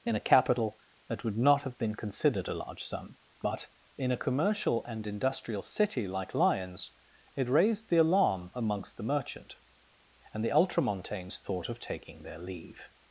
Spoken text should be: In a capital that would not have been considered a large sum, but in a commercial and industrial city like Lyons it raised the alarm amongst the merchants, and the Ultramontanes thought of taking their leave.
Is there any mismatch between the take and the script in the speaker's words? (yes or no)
yes